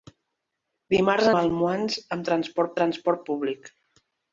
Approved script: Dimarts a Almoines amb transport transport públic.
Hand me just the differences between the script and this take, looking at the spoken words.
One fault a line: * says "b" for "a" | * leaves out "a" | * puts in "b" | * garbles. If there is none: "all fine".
all fine